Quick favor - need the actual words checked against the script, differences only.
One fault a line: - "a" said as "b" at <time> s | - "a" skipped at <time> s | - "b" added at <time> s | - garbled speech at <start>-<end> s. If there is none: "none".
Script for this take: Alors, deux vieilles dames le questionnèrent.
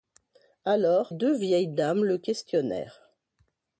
none